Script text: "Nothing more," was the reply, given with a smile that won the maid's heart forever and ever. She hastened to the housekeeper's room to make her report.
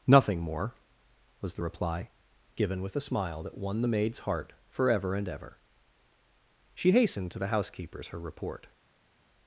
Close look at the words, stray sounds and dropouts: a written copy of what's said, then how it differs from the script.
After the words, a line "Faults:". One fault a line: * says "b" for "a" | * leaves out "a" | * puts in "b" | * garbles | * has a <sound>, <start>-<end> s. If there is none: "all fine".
"Nothing more," was the reply, given with a smile that won the maid's heart forever and ever. She hastened to the housekeeper's her report.
Faults:
* leaves out "room to make"